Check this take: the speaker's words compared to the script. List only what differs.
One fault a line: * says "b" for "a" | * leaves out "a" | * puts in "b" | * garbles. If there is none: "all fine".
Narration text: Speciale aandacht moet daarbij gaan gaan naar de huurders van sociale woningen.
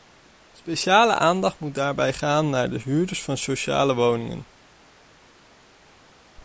* leaves out "gaan"